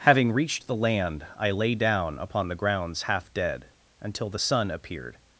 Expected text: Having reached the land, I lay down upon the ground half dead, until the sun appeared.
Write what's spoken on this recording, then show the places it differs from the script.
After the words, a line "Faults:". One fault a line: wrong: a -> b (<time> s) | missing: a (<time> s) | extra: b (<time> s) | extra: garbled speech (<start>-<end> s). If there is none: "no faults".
Having reached the land, I lay down upon the grounds half dead, until the sun appeared.
Faults:
wrong: ground -> grounds (2.5 s)